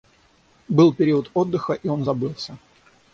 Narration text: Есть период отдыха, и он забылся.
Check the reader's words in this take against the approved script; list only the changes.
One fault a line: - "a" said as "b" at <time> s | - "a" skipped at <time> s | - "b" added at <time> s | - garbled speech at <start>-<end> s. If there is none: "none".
- "Есть" said as "Был" at 0.7 s